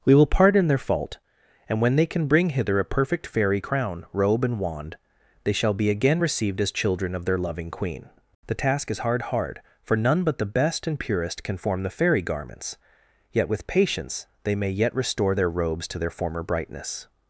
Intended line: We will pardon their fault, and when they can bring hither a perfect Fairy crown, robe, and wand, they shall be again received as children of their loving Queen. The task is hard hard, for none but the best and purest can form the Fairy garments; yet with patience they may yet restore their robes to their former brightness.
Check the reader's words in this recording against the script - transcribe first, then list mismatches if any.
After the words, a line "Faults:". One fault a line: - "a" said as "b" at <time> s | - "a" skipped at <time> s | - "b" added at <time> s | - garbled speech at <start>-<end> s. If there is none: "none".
We will pardon their fault, and when they can bring hither a perfect Fairy crown, robe, and wand, they shall be again received as children of their loving Queen. The task is hard hard, for none but the best and purest can form the Fairy garments; yet with patience they may yet restore their robes to their former brightness.
Faults:
none